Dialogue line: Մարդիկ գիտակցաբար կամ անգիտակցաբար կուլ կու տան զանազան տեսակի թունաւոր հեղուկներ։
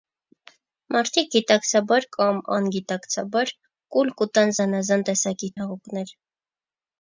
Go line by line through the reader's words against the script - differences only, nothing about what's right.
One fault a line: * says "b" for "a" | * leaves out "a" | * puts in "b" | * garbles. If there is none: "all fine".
* leaves out "թունաւոր"